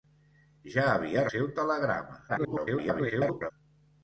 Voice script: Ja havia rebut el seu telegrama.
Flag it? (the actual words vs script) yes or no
yes